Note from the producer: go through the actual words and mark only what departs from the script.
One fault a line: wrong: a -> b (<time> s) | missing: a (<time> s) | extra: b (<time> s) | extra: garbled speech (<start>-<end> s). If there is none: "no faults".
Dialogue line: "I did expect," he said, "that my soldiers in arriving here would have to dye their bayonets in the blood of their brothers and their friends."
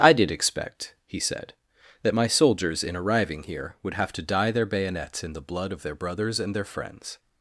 no faults